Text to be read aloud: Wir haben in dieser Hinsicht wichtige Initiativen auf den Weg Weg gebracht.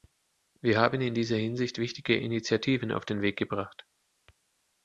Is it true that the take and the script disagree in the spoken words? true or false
true